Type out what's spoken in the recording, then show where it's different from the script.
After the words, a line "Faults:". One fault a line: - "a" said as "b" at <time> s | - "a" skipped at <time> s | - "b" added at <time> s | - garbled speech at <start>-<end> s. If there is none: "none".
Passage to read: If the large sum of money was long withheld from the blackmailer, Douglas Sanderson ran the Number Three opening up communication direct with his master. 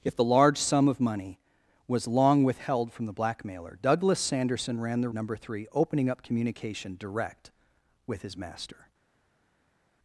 If the large sum of money was long withheld from the blackmailer, Douglas Sanderson ran the Number Three opening up communication direct with his master.
Faults:
none